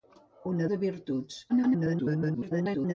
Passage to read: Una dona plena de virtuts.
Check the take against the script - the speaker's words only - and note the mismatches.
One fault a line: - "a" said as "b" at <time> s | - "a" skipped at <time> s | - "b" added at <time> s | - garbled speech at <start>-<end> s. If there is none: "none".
- "dona plena" skipped at 0.7 s
- garbled speech at 1.5-2.9 s